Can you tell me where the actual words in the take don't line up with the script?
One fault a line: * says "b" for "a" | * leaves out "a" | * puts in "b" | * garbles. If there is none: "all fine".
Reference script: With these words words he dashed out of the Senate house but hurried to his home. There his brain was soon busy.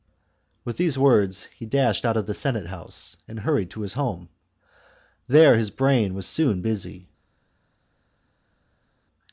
* leaves out "words"
* says "and" for "but"